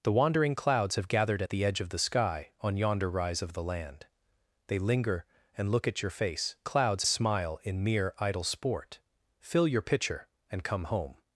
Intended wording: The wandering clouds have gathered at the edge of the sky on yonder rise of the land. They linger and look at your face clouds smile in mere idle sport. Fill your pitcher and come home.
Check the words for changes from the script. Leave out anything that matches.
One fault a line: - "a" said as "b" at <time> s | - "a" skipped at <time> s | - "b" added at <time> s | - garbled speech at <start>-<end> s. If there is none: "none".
none